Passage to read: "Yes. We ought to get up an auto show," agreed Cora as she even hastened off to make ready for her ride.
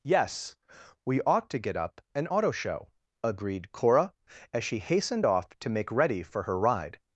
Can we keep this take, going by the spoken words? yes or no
no